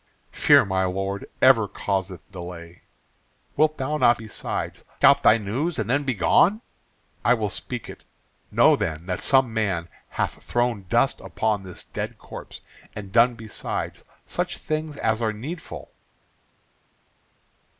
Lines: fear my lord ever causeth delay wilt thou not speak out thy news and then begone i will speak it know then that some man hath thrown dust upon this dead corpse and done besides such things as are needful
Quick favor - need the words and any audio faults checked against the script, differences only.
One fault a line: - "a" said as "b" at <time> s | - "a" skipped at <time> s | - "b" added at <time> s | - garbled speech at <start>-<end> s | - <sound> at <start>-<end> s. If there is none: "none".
- "speak" said as "besides" at 4.1 s